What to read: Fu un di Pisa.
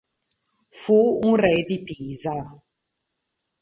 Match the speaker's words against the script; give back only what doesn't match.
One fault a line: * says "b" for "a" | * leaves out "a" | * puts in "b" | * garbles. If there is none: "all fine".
* puts in "re"